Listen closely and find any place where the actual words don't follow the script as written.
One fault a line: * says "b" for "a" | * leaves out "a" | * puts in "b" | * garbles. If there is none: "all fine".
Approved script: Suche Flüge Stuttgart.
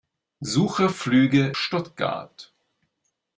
all fine